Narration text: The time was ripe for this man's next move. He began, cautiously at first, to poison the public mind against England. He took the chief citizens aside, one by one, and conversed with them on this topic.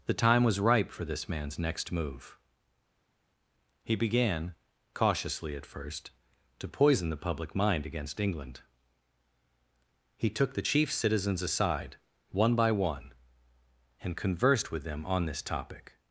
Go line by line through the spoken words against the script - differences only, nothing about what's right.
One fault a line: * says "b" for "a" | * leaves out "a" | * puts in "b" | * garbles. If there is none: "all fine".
all fine